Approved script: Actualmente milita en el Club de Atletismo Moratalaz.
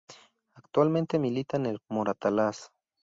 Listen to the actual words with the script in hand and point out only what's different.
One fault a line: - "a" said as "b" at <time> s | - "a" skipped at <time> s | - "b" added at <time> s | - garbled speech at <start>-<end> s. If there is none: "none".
- "Club de Atletismo" skipped at 1.8 s